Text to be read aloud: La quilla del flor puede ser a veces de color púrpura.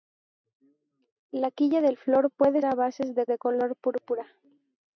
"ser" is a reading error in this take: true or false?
true